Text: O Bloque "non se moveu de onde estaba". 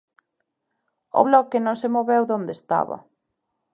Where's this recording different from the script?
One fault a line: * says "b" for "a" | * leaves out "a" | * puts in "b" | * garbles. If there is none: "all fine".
all fine